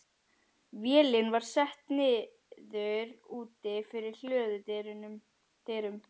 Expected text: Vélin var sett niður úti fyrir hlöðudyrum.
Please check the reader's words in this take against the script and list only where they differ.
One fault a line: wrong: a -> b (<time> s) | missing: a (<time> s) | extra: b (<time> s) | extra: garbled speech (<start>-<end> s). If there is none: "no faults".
no faults